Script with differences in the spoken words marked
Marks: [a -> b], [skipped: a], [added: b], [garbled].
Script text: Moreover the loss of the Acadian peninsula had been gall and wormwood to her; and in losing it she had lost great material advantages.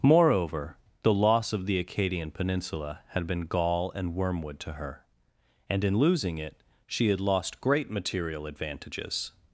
Moreover the loss of the Acadian peninsula had been gall and wormwood to her; and in losing it she had lost great material advantages.